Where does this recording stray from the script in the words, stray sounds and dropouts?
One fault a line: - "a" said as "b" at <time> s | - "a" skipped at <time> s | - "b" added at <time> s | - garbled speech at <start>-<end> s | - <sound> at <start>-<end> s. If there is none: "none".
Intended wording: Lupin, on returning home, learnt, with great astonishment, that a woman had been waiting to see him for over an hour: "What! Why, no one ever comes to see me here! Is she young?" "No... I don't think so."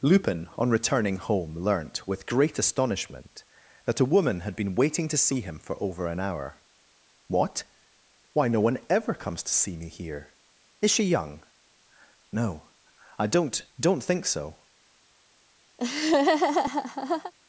- "don't" added at 13.8 s
- laugh at 15.8-17.3 s